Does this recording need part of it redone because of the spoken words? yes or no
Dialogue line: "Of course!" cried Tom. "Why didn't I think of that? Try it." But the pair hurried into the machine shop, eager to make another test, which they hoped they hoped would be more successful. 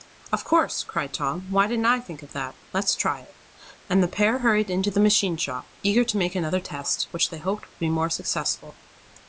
yes